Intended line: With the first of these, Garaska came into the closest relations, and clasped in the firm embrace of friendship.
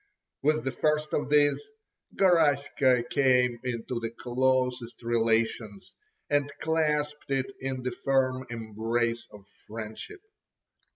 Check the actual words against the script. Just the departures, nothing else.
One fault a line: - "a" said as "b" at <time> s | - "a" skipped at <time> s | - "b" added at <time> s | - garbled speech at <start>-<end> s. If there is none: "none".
- "it" added at 7.3 s